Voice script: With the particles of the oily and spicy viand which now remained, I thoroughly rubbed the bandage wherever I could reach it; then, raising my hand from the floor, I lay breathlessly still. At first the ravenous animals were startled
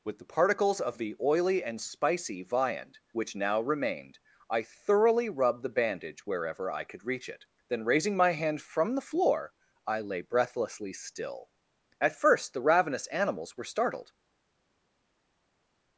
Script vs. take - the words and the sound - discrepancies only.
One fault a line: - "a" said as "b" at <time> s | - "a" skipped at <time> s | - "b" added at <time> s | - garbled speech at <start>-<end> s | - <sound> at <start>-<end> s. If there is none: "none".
none